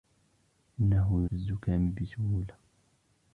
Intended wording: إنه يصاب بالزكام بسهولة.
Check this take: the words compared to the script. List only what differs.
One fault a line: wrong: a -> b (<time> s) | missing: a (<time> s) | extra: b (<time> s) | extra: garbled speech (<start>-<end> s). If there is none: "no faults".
missing: يصاب (1.3 s)